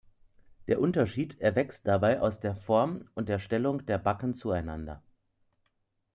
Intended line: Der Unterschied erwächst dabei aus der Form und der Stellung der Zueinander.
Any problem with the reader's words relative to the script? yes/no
yes